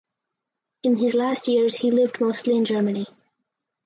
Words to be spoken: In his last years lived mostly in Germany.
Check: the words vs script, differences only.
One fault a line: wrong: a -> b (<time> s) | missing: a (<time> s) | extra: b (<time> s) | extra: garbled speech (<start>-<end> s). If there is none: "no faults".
extra: he (1.8 s)